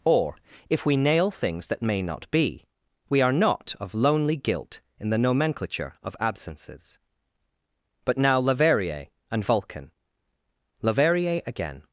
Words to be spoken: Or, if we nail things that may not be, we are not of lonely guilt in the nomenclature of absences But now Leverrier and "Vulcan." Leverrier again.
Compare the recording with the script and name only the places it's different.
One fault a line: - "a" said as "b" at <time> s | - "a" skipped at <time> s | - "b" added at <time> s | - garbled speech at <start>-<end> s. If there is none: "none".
none